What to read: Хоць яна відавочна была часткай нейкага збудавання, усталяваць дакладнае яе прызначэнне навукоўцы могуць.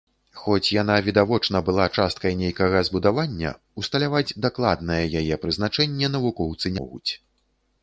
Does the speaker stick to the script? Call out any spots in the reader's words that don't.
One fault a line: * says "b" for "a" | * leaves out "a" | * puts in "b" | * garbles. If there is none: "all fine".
all fine